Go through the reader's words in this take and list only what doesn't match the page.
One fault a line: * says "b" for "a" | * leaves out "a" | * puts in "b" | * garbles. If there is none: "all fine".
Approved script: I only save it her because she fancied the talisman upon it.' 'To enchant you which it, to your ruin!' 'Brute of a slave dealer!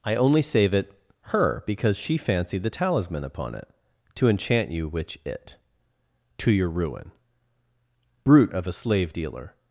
all fine